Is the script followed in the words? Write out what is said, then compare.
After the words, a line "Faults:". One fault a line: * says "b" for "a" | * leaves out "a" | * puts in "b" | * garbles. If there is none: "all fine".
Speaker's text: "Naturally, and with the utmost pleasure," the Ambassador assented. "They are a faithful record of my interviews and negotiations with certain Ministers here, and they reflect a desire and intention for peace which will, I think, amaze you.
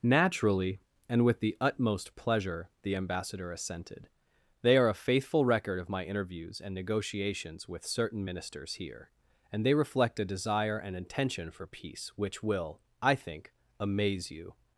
"Naturally, and with the utmost pleasure," the Ambassador assented. "They are a faithful record of my interviews and negotiations with certain Ministers here, and they reflect a desire and intention for peace which will, I think, amaze you.
Faults:
all fine